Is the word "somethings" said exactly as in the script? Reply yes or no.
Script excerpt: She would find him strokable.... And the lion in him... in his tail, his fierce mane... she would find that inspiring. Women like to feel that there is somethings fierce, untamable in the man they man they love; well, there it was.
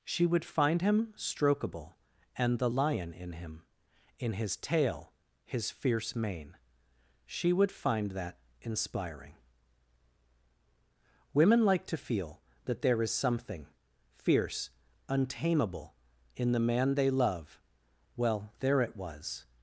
no